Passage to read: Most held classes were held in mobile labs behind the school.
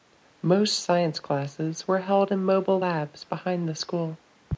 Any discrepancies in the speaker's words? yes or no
yes